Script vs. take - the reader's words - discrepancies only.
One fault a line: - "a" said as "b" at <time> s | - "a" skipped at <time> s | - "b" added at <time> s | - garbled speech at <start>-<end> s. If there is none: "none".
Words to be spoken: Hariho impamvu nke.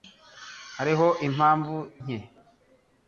none